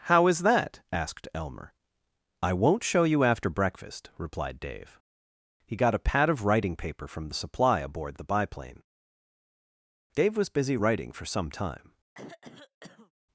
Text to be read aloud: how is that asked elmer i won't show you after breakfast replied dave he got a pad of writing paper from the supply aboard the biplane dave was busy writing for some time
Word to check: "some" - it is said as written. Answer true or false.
true